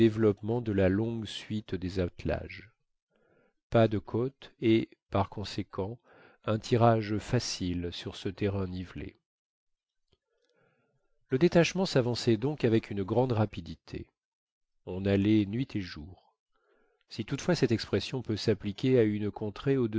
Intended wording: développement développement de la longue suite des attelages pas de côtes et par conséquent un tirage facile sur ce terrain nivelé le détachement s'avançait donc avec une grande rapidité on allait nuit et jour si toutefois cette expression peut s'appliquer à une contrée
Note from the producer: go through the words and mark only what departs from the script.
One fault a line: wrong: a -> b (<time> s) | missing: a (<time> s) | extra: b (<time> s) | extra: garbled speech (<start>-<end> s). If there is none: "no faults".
missing: développement (0.6 s)